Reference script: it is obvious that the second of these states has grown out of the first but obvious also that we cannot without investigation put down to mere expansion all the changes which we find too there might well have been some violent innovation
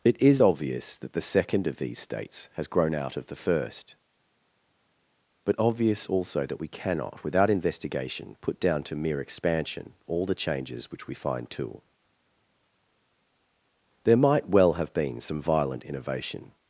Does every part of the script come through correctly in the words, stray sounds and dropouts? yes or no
yes